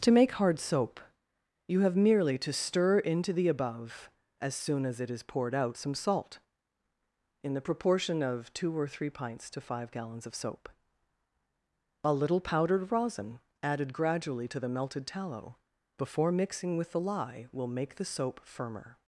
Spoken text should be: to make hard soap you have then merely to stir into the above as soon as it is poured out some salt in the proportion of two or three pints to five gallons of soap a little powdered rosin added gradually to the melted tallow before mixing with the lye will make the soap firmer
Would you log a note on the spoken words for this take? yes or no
yes